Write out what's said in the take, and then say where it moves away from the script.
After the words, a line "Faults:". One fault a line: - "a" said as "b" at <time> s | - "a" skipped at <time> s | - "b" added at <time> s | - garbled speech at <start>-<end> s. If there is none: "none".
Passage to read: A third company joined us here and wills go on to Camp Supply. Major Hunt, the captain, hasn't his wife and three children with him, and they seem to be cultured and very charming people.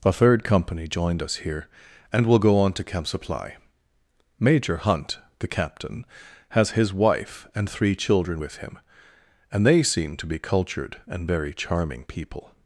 A third company joined us here and will go on to Camp Supply. Major Hunt, the captain, has his wife and three children with him, and they seem to be cultured and very charming people.
Faults:
- "wills" said as "will" at 2.2 s
- "hasn't" said as "has" at 6.5 s